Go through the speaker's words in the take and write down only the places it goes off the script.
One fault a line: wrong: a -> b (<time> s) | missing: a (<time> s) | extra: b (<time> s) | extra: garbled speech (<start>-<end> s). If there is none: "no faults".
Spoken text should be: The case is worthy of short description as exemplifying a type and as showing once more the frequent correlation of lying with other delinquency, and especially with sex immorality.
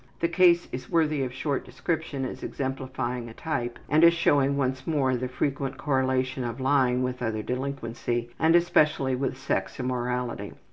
no faults